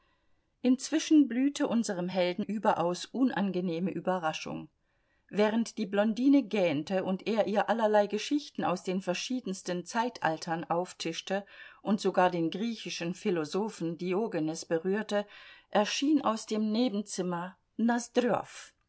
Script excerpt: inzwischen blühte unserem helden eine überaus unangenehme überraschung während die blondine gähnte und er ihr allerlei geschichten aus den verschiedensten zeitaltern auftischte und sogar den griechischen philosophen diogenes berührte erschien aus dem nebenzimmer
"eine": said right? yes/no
no